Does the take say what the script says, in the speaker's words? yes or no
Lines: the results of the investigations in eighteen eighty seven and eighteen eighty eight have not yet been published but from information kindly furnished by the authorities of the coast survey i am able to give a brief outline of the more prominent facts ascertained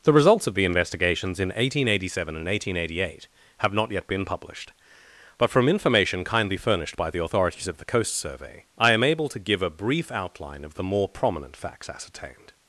yes